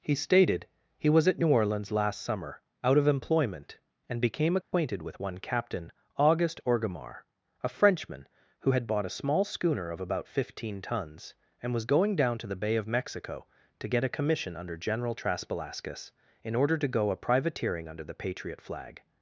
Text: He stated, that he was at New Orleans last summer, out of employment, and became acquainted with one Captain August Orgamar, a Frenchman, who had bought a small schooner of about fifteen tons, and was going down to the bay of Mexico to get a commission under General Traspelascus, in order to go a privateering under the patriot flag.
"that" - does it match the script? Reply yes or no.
no